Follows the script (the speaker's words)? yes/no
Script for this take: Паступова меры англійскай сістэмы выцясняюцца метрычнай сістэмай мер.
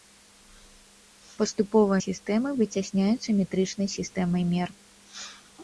no